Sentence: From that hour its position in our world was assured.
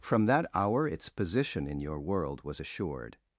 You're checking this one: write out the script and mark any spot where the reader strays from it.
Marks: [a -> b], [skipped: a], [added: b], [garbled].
From that hour its position in [our -> your] world was assured.